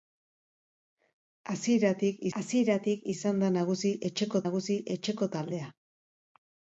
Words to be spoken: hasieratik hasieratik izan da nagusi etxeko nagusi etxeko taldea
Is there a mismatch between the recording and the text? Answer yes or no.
no